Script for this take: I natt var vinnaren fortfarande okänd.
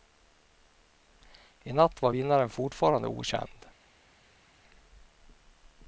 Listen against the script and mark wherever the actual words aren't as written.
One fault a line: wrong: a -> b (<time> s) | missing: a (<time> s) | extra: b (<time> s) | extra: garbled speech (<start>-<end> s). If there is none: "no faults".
no faults